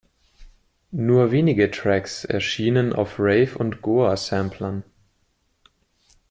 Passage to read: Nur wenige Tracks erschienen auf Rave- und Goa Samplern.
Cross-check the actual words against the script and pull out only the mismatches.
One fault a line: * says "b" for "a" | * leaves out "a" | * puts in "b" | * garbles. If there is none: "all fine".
all fine